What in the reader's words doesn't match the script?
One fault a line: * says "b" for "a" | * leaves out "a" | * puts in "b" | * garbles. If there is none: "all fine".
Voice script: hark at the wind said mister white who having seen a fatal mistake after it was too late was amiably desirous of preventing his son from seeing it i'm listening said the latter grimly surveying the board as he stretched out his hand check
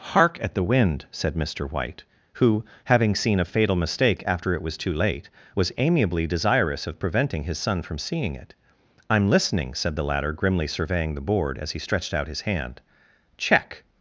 all fine